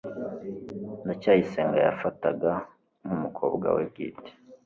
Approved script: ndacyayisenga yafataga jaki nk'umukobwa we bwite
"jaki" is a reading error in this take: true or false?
true